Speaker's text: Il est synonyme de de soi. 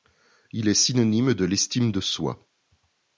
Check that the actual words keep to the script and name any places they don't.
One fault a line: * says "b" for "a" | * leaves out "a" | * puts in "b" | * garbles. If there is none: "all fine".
* puts in "l'estime"